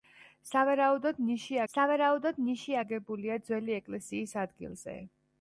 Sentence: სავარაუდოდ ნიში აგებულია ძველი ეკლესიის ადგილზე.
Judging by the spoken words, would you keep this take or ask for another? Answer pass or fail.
fail